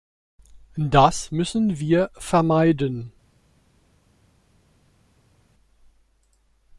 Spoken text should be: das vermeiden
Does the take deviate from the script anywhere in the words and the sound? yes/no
yes